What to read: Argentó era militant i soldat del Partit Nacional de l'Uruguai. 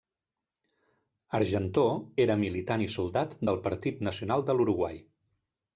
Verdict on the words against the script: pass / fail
pass